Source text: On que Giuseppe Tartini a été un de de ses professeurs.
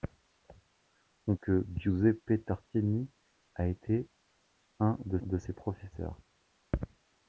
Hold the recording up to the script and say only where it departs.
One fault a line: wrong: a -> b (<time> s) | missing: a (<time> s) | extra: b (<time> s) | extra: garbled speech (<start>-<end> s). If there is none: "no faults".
no faults